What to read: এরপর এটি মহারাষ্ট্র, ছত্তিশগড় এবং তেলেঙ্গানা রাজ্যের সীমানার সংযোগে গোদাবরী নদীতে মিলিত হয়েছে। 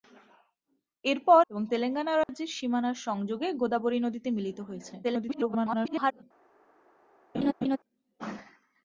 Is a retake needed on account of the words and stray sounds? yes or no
yes